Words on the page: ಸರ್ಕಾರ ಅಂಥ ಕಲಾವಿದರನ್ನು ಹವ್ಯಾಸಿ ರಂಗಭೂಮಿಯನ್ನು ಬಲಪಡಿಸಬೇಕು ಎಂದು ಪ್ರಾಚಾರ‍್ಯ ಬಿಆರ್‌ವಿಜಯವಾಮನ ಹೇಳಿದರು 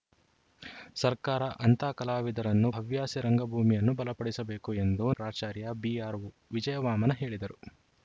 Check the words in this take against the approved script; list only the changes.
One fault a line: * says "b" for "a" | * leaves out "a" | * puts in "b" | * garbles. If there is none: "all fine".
all fine